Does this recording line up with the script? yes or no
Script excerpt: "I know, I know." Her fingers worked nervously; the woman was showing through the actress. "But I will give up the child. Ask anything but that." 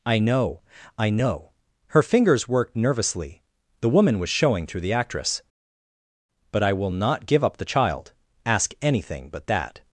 no